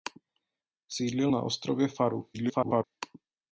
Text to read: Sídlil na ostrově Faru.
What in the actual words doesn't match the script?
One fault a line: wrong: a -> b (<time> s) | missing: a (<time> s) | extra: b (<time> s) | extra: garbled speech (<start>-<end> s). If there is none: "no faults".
extra: garbled speech (2.3-2.8 s)